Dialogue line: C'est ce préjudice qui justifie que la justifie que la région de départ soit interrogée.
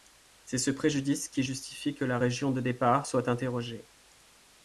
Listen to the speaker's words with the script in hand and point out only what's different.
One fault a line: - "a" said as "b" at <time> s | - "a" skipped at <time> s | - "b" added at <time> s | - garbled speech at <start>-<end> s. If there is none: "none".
- "justifie que la" skipped at 2.2 s